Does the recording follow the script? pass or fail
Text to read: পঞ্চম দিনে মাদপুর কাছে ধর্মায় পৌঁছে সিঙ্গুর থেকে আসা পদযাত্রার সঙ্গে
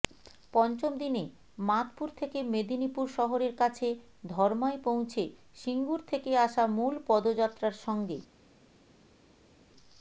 fail